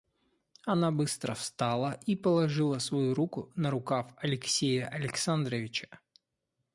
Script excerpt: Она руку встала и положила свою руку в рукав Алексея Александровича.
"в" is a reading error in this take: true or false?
true